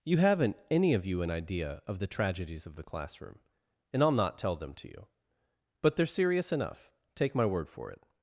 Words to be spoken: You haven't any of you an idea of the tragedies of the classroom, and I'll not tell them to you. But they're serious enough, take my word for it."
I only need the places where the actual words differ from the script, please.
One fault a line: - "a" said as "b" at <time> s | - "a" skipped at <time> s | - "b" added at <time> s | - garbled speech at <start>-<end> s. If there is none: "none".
none